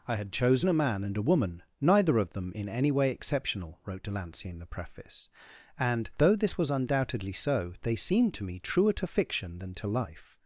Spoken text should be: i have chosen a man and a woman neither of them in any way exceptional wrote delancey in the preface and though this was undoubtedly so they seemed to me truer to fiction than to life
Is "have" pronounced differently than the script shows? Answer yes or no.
yes